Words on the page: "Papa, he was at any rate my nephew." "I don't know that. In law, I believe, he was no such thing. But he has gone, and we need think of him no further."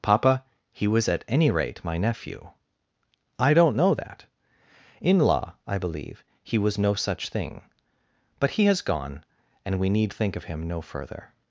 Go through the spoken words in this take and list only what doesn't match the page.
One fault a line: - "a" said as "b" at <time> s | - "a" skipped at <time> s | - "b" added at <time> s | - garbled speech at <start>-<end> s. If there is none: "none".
none